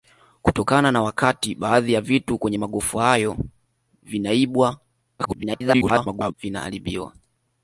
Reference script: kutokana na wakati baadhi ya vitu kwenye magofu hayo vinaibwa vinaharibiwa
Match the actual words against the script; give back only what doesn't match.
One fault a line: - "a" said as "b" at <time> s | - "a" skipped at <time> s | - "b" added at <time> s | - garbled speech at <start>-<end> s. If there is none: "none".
- garbled speech at 5.2-6.3 s